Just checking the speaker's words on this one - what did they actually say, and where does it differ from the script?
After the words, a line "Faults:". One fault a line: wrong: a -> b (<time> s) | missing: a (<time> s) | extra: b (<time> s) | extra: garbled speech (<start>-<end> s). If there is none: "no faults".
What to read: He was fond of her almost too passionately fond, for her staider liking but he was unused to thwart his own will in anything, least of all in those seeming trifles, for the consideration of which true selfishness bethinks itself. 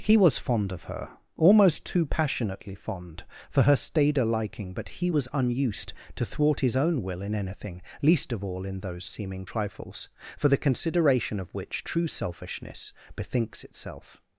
He was fond of her almost too passionately fond, for her staider liking but he was unused to thwart his own will in anything, least of all in those seeming trifles, for the consideration of which true selfishness bethinks itself.
Faults:
no faults